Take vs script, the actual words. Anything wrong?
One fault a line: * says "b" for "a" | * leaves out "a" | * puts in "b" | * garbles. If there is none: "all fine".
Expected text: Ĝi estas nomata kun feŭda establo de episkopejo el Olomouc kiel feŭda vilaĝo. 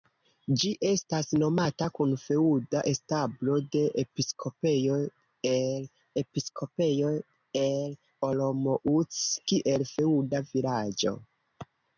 * puts in "episkopejo el"